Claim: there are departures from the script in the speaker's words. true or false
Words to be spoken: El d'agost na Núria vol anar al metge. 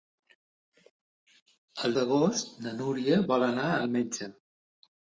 false